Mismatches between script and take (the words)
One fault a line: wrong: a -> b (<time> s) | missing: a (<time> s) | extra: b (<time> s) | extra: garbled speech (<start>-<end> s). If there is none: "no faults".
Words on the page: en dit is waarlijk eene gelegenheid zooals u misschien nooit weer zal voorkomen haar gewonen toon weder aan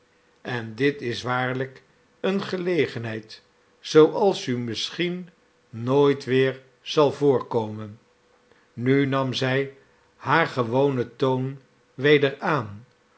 extra: nu nam zij (8.7 s)